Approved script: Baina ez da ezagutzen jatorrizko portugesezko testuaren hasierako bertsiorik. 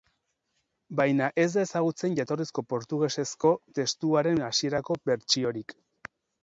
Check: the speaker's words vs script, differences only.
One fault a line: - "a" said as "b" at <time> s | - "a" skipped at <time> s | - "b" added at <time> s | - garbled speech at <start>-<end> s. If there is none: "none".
none